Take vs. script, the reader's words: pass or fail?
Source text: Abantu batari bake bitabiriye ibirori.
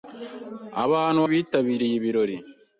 fail